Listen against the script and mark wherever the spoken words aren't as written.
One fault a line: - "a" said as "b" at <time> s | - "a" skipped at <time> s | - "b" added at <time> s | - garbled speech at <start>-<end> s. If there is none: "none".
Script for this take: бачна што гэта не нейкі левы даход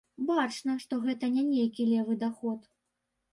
none